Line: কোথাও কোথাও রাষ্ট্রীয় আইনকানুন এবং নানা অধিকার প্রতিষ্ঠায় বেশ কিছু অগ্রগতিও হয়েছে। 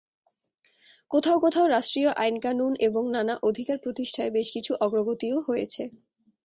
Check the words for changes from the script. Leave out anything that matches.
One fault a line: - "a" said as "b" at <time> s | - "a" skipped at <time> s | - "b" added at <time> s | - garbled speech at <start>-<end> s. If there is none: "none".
none